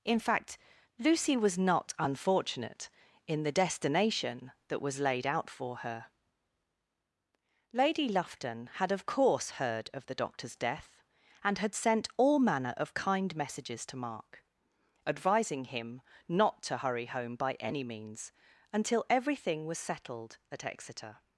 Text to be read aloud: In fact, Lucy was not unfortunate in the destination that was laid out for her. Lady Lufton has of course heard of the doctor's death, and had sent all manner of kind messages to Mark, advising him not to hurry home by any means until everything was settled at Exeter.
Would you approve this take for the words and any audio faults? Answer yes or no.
no